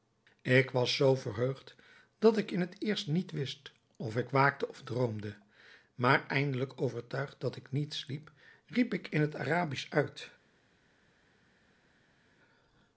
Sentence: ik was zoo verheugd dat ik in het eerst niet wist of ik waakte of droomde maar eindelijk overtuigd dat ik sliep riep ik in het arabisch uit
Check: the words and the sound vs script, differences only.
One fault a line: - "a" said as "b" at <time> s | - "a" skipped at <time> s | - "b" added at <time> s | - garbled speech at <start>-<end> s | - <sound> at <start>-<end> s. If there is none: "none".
- "niet" added at 7.7 s